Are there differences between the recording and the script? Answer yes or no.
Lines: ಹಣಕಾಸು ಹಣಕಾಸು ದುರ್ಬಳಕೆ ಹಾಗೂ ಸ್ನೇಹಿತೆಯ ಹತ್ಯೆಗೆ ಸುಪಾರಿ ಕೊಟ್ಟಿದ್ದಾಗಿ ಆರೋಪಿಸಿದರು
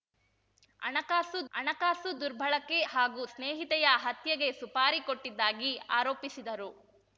no